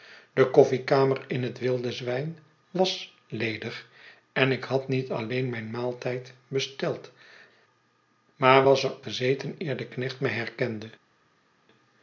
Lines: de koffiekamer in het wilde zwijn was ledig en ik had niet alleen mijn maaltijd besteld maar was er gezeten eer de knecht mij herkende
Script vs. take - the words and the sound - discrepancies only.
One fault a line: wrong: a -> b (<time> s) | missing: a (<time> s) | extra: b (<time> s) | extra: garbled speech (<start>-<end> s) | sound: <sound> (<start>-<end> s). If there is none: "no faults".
no faults